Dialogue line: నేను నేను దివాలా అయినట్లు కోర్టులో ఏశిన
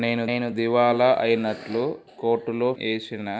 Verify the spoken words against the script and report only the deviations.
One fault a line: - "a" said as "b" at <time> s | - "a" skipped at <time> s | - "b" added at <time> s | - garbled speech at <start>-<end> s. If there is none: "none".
none